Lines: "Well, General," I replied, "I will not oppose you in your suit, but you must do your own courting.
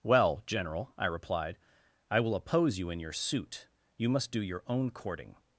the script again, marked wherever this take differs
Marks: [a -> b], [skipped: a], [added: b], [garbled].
"Well, General," I replied, "I will [skipped: not] oppose you in your suit, [skipped: but] you must do your own courting.